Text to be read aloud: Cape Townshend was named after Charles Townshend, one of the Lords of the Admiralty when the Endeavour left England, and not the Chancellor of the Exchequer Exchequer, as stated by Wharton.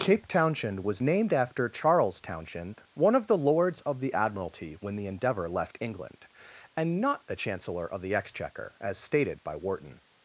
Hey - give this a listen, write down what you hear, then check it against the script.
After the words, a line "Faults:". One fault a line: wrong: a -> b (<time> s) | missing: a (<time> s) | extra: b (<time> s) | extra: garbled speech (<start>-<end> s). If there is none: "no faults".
Cape Townshend was named after Charles Townshend, one of the Lords of the Admiralty when the Endeavour left England, and not the Chancellor of the Exchequer, as stated by Wharton.
Faults:
missing: Exchequer (8.8 s)